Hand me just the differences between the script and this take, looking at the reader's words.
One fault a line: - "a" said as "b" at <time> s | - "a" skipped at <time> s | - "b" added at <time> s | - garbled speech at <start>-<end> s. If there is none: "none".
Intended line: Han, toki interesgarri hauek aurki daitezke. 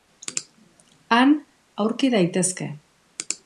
- "toki interesgarri hauek" skipped at 1.4 s